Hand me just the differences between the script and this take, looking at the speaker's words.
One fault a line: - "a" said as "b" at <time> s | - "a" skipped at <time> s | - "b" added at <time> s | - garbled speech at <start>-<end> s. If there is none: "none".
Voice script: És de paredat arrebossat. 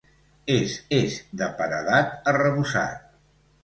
- "és" added at 1.0 s